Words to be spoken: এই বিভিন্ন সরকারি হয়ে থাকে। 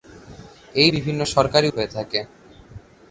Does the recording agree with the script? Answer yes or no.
yes